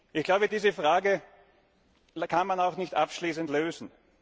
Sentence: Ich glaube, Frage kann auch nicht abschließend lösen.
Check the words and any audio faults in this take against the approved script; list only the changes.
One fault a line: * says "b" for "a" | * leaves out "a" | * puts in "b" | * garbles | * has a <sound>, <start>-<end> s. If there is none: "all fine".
* puts in "diese"
* puts in "man"